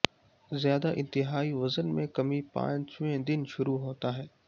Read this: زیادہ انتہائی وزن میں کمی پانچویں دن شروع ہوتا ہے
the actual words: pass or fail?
pass